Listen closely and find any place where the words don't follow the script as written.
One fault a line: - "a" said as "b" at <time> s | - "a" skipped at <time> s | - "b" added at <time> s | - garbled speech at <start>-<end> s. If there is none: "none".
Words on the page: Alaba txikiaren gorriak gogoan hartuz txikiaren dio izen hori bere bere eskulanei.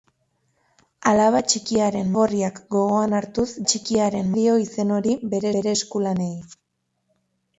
none